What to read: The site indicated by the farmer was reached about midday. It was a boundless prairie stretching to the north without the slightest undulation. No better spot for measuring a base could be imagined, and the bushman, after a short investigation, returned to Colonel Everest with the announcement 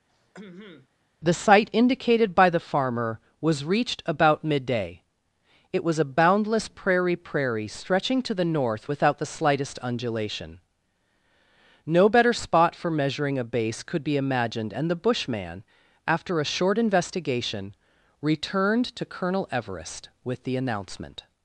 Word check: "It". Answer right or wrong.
right